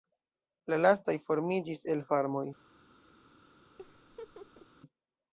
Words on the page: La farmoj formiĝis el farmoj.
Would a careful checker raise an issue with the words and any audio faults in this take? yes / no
yes